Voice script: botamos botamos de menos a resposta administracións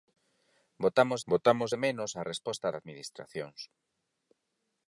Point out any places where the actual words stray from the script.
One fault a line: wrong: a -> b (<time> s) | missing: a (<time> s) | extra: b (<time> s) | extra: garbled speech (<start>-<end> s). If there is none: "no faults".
no faults